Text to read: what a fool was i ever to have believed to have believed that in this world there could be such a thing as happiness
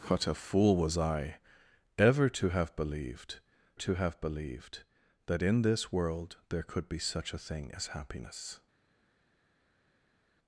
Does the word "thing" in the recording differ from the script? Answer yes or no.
no